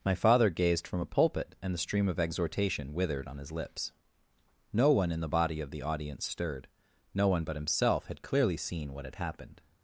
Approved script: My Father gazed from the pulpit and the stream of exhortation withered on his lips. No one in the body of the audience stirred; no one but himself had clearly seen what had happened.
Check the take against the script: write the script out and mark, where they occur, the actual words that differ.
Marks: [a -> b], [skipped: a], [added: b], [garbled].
My Father gazed from [the -> a] pulpit and the stream of exhortation withered on his lips. No one in the body of the audience stirred; no one but himself had clearly seen what had happened.